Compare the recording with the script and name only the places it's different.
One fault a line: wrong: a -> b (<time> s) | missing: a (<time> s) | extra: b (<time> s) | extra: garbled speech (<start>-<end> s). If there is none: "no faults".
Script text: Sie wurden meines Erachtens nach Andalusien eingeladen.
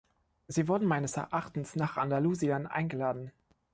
no faults